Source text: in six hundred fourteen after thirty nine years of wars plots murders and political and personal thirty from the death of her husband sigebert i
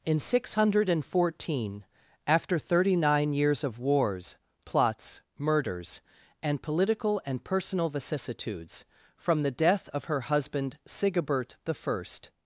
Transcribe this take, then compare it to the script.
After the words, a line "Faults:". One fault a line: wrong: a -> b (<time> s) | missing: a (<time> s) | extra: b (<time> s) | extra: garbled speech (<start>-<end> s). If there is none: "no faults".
in six hundred fourteen after thirty nine years of wars plots murders and political and personal vicissitudes from the death of her husband sigebert i
Faults:
wrong: thirty -> vicissitudes (7.9 s)